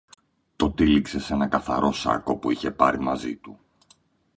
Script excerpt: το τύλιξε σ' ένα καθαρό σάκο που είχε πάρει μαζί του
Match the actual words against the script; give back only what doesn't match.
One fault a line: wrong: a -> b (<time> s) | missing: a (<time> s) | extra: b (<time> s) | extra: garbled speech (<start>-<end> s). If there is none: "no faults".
no faults